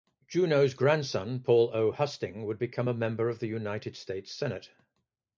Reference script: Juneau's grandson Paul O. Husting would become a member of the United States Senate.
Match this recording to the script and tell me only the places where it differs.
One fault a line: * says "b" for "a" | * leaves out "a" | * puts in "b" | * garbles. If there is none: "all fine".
all fine